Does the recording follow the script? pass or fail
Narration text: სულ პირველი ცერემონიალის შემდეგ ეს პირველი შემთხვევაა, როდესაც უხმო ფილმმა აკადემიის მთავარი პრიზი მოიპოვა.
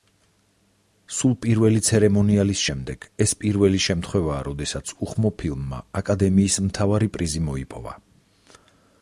pass